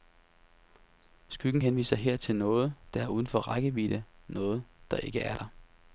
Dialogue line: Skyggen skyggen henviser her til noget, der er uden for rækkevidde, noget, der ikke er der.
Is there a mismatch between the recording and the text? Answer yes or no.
yes